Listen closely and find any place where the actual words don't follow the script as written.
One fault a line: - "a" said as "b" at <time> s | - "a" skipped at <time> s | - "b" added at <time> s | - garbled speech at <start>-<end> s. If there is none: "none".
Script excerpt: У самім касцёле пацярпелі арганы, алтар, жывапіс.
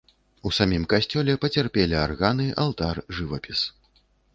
none